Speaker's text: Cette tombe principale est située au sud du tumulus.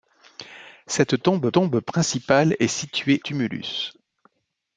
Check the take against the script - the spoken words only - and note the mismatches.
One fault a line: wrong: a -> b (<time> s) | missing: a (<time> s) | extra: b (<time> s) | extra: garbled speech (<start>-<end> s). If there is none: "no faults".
extra: tombe (1.5 s)
missing: au sud du (3.2 s)